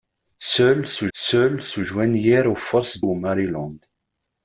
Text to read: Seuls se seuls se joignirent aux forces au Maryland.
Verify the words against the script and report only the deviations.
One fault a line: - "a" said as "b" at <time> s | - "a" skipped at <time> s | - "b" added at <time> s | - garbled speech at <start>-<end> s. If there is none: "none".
none